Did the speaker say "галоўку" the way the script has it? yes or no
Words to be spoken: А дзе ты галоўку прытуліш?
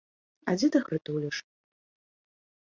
no